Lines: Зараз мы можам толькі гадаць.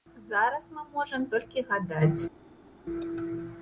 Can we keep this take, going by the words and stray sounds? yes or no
yes